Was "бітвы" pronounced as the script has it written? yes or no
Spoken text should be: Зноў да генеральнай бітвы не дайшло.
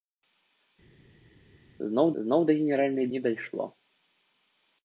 no